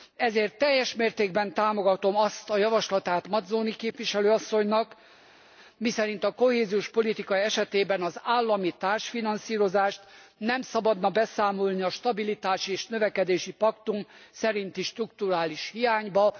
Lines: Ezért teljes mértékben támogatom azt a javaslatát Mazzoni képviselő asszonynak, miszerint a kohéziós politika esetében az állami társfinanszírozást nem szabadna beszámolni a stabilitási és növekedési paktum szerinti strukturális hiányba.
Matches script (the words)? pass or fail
pass